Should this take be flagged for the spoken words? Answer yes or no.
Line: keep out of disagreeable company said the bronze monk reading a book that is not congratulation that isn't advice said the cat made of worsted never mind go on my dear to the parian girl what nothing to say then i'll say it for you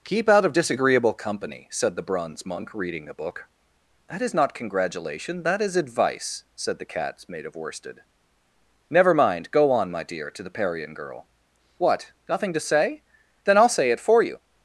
yes